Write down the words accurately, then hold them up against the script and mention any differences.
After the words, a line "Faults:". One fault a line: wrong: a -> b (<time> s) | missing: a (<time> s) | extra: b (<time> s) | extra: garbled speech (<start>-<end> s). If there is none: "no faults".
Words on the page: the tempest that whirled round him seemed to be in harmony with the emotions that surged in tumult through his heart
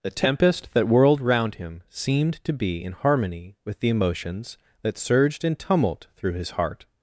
the tempest that whirled round him seemed to be in harmony with the emotions that surged in tumult through his heart
Faults:
no faults